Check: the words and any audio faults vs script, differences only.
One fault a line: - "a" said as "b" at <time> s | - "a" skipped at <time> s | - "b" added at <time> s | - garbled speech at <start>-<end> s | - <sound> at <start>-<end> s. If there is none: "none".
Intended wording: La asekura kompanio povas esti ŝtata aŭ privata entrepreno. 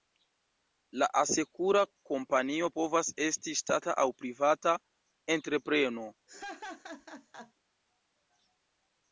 - laugh at 6.3-7.5 s